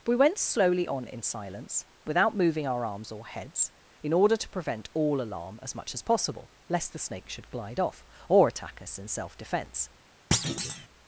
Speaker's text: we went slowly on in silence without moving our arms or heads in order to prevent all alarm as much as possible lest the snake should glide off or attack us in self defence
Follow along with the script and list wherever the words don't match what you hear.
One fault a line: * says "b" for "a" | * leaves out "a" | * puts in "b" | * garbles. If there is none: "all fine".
all fine